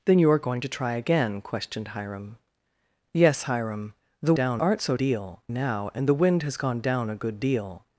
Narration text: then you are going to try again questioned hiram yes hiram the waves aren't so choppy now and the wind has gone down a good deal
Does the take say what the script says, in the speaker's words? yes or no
no